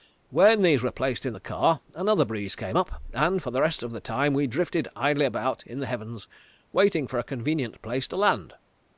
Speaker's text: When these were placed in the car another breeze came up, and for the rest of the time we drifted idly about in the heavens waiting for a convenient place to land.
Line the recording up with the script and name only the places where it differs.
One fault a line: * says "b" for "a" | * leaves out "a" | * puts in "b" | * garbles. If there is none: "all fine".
all fine